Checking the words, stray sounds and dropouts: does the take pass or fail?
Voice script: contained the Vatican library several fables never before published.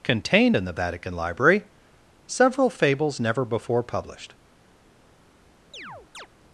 fail